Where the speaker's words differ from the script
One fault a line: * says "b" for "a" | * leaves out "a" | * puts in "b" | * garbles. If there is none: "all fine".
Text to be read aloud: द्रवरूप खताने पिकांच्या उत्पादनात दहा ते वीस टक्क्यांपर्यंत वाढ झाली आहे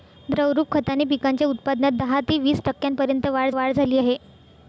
* puts in "वाढ"